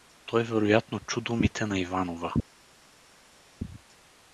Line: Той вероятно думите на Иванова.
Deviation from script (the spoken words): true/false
true